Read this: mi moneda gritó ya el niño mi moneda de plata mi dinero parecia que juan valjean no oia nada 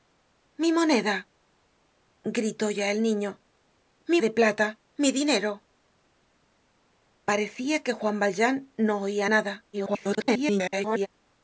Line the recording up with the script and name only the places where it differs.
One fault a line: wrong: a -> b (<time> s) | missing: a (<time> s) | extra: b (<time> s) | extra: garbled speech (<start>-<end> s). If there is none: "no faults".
missing: moneda (4.2 s)
extra: garbled speech (9.7-11.1 s)